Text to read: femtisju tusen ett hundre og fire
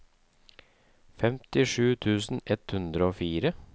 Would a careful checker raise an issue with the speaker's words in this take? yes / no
no